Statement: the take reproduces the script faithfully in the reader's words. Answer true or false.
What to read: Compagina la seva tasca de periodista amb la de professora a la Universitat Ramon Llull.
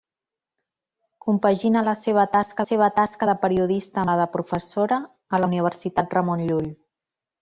false